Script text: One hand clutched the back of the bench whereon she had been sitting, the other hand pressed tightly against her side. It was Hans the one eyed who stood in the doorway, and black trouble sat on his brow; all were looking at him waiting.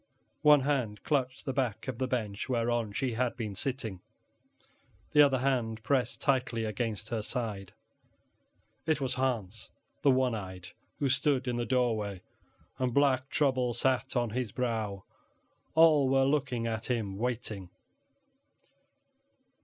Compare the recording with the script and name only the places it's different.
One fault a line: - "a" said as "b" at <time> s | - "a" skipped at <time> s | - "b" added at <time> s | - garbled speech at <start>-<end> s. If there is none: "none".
none